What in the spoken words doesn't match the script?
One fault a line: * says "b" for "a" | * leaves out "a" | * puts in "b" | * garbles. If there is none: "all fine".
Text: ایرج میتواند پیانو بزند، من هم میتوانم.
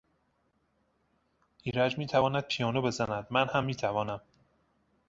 all fine